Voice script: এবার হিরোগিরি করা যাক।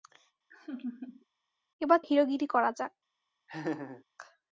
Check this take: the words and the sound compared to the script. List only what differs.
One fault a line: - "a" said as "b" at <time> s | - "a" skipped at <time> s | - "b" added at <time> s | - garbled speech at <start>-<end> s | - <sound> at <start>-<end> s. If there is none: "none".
- laugh at 0.5-1.3 s
- laugh at 3.5-4.0 s